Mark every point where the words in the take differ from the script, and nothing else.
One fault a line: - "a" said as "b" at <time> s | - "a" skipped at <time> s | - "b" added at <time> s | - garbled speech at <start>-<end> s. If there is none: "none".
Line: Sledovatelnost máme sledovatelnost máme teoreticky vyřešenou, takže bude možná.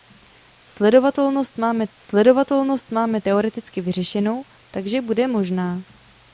none